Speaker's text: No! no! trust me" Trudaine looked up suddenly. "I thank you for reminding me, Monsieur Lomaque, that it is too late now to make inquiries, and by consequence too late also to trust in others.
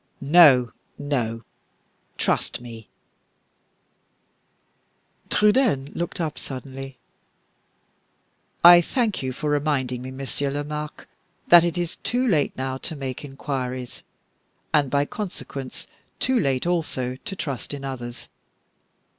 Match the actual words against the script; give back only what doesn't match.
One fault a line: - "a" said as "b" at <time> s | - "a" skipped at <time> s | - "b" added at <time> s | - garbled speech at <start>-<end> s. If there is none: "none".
none